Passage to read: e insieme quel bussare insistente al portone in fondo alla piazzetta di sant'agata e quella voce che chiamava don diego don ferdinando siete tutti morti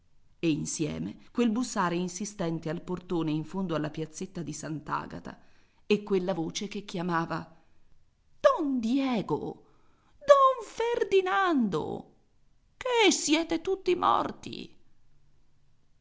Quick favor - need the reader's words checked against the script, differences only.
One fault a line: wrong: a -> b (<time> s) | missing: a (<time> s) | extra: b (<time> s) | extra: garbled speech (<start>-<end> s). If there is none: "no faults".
extra: che (12.8 s)